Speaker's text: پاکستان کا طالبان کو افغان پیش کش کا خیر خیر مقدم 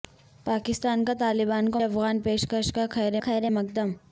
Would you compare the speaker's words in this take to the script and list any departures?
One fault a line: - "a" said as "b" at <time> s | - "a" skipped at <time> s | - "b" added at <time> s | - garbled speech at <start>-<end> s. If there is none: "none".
none